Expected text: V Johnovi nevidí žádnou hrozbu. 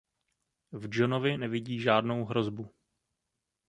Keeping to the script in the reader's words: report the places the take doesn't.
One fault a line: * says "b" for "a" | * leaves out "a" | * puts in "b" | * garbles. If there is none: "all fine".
all fine